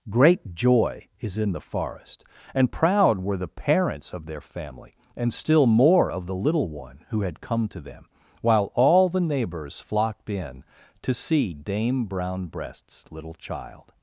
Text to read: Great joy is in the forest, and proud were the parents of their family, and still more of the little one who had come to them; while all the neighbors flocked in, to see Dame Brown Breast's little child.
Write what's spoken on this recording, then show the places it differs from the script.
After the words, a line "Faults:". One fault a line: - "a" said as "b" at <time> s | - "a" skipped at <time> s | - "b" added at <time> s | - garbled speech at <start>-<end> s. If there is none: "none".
Great joy is in the forest, and proud were the parents of their family, and still more of the little one who had come to them; while all the neighbors flocked in, to see Dame Brown Breast's little child.
Faults:
none